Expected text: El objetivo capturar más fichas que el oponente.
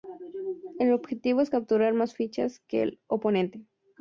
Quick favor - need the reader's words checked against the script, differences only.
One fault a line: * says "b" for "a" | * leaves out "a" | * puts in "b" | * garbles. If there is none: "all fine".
* puts in "es"